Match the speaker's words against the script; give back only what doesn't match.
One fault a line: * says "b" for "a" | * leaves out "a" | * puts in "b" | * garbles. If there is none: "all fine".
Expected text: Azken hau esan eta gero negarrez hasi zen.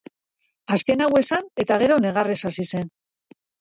all fine